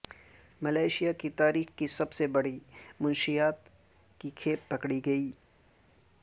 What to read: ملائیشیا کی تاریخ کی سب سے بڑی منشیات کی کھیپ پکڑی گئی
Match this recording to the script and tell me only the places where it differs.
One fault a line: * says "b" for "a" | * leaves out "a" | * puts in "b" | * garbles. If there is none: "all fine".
all fine